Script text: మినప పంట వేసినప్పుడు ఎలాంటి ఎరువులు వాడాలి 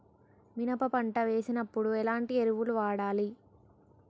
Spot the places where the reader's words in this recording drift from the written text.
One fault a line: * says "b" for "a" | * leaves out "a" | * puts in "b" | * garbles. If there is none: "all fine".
all fine